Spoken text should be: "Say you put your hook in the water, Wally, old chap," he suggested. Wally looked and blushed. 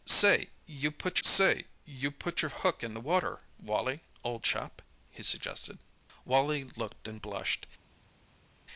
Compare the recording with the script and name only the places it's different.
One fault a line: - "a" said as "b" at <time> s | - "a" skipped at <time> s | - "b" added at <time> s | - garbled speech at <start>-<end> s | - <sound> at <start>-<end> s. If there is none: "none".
- "say you put" added at 1.2 s